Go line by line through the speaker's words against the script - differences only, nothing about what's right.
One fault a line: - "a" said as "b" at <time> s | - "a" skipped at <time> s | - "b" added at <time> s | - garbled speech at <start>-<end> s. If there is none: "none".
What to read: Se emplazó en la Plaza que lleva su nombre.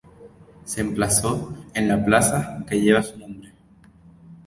none